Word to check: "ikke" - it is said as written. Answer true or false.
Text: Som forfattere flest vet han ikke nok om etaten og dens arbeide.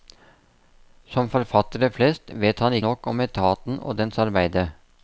false